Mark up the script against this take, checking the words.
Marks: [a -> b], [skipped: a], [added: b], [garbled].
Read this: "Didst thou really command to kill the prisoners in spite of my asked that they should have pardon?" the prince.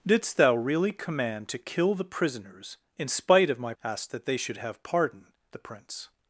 "Didst thou really command to kill the prisoners in spite of my asked that they should have pardon?" the prince.